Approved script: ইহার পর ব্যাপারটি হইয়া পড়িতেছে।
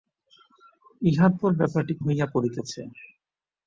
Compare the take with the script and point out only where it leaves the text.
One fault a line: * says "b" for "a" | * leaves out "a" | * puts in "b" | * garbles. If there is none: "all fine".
all fine